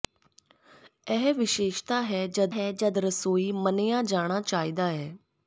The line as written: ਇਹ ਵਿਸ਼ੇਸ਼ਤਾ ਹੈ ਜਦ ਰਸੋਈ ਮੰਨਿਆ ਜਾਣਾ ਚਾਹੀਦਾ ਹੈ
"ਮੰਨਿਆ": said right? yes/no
yes